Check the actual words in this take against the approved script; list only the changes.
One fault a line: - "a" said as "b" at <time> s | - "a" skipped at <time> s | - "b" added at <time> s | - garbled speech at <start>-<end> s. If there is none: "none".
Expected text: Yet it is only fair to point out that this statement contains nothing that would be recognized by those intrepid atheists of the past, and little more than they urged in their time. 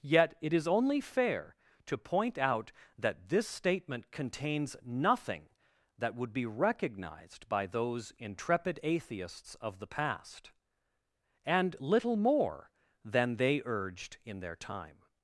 none